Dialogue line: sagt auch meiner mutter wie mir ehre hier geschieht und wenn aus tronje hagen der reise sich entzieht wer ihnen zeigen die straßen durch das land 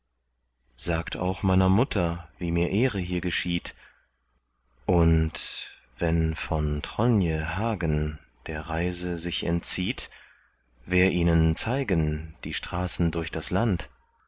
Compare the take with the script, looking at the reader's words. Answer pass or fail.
fail